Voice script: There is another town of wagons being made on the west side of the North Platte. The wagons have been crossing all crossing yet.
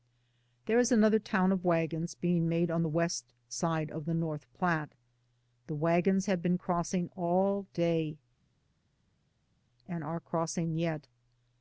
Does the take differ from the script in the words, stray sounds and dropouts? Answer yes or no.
yes